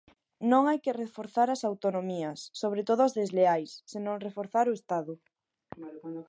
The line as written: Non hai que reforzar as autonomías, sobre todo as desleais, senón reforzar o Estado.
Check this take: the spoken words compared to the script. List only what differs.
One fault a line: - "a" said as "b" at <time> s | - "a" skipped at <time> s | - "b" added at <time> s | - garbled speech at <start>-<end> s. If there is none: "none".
none